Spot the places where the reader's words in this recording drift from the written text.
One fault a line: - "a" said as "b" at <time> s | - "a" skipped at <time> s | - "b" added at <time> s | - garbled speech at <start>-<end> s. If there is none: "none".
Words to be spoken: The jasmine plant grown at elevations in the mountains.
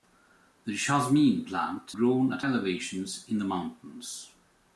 none